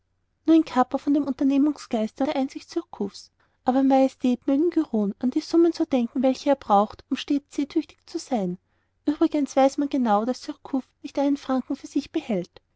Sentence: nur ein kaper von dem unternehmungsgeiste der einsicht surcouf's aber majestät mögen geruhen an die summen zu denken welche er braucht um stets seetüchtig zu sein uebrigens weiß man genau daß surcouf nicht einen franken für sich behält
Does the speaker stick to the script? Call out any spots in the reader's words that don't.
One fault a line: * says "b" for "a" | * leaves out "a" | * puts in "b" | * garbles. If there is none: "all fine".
all fine